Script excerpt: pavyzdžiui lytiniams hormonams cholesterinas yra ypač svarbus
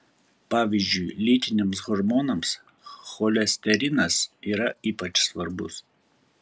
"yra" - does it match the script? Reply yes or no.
yes